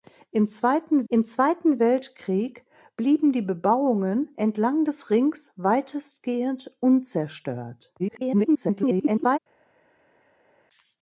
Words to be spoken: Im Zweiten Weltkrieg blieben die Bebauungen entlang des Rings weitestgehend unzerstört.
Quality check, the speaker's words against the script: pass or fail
fail